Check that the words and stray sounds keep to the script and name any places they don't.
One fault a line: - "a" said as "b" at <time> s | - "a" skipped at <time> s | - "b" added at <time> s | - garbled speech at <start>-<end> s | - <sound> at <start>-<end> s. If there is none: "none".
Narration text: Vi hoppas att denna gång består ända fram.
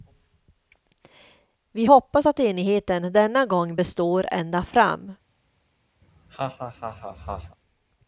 - "enigheten" added at 2.4 s
- laugh at 6.0-7.6 s